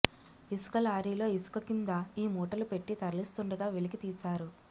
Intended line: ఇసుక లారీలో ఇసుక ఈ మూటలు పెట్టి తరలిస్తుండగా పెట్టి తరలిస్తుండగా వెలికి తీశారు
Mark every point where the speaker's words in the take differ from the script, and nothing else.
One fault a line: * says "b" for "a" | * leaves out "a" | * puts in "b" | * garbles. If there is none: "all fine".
* puts in "కింద"
* leaves out "పెట్టి తరలిస్తుండగా"